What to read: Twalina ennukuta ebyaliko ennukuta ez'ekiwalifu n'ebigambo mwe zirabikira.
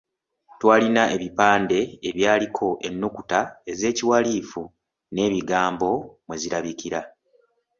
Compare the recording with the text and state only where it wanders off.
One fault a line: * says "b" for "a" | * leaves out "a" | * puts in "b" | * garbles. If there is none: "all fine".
* says "ebipande" for "ennukuta"